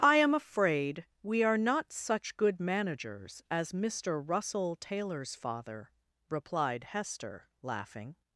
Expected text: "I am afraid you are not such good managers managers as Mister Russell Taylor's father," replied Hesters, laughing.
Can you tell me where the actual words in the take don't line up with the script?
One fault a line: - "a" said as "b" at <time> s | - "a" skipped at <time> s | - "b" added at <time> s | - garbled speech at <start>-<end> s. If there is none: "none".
- "you" said as "we" at 1.2 s
- "managers" skipped at 3.4 s
- "Hesters" said as "Hester" at 6.8 s